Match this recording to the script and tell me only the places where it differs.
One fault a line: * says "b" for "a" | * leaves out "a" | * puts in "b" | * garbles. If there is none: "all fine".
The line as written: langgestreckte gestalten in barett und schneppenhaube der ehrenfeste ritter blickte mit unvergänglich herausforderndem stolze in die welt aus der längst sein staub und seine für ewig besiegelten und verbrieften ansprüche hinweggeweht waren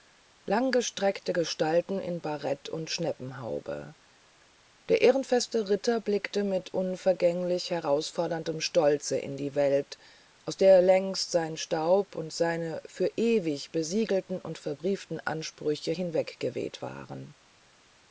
all fine